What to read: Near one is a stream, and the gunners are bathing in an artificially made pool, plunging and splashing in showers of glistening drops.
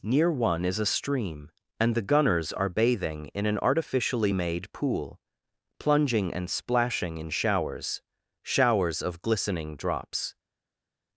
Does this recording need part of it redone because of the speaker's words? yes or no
yes